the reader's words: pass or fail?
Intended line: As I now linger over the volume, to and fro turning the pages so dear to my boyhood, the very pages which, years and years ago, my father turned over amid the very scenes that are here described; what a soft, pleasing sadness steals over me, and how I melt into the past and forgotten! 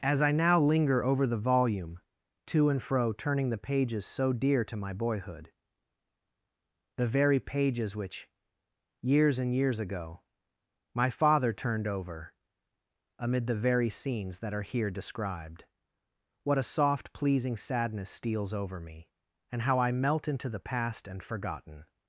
pass